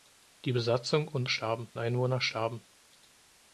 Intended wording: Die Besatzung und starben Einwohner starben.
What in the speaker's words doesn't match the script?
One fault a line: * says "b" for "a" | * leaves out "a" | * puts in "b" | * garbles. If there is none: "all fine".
all fine